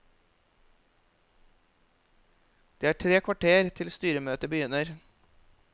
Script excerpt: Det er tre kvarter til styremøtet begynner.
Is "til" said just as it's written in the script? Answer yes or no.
yes